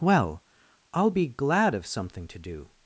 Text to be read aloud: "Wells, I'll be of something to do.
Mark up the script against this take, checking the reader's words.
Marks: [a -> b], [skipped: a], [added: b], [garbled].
["Wells, -> Well] I'll be [added: glad] of something to do.